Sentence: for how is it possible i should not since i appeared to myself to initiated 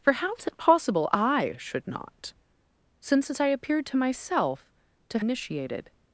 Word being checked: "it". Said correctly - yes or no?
yes